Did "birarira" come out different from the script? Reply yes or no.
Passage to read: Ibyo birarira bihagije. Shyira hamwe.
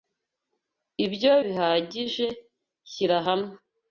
yes